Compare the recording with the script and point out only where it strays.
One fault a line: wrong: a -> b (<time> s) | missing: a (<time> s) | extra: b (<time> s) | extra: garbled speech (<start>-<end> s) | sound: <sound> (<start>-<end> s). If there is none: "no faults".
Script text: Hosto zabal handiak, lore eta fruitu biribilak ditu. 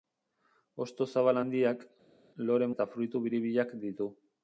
no faults